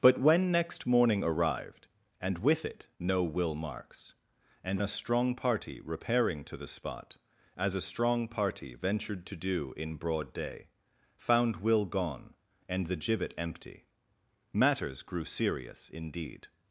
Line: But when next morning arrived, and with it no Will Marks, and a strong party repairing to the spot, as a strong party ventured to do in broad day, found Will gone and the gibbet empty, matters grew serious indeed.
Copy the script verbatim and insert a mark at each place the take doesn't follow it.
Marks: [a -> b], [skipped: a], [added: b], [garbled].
But when next morning arrived, and with it no Will Marks, and a strong party repairing to the spot, as a strong party ventured to do in broad day, found Will gone and the gibbet empty, matters grew serious indeed.